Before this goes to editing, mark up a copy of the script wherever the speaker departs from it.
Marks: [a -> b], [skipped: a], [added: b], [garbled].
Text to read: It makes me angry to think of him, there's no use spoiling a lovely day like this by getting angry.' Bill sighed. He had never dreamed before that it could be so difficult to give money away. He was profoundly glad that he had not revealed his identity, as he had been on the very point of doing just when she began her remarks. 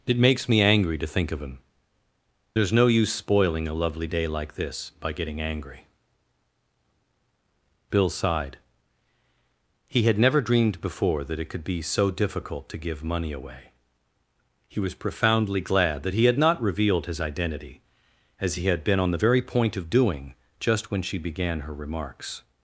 It makes me angry to think of him, there's no use spoiling a lovely day like this by getting angry.' Bill sighed. He had never dreamed before that it could be so difficult to give money away. He was profoundly glad that he had not revealed his identity, as he had been on the very point of doing just when she began her remarks.